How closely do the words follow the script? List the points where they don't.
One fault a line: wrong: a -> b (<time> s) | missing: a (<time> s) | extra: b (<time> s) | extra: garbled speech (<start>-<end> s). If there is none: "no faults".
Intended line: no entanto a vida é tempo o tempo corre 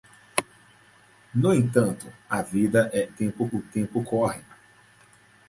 no faults